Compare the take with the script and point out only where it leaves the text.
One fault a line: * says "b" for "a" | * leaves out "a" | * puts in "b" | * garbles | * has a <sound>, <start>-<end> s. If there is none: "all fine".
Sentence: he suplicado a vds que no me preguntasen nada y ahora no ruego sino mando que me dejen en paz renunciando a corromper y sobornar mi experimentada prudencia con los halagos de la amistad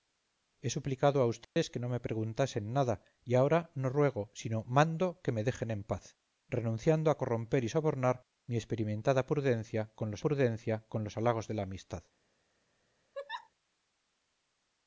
* has a dropout, 1.4-1.6 s
* puts in "prudencia con los"
* has a laugh, 13.1-13.5 s